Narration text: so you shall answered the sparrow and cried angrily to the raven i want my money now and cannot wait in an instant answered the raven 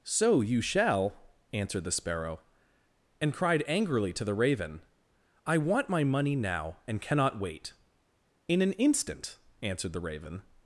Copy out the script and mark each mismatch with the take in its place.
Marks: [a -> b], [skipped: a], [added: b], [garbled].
so you shall answered the sparrow and cried angrily to the raven i want my money now and cannot wait in an instant answered the raven